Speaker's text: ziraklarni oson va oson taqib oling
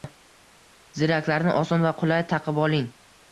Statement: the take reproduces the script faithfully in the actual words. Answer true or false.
false